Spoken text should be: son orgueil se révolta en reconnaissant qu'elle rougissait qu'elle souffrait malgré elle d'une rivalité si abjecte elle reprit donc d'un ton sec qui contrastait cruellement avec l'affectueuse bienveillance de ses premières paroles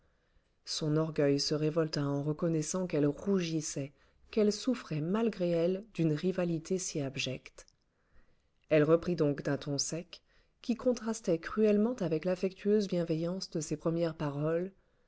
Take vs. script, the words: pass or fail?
pass